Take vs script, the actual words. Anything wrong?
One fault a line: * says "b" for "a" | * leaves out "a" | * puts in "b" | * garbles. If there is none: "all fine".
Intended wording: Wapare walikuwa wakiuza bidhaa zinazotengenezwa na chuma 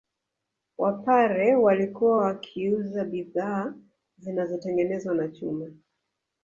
all fine